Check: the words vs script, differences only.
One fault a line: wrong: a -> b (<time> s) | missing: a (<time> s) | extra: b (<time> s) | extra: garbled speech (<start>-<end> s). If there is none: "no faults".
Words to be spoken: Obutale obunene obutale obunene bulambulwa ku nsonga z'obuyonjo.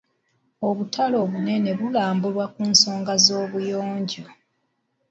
missing: obutale obunene (1.7 s)